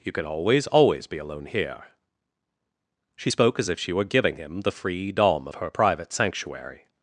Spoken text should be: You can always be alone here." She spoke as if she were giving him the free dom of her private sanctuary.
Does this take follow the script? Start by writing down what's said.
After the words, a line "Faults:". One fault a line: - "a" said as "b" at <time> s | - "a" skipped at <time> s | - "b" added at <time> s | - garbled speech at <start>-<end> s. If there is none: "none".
You can always always be alone here." She spoke as if she were giving him the free dom of her private sanctuary.
Faults:
- "always" added at 0.7 s